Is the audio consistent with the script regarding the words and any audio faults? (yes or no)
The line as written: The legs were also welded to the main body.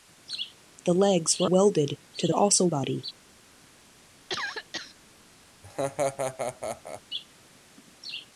no